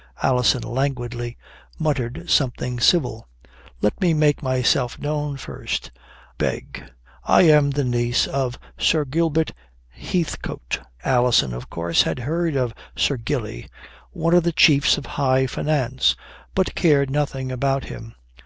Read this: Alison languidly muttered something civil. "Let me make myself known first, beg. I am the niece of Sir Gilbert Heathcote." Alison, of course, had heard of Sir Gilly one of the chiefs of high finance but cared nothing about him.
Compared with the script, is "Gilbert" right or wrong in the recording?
right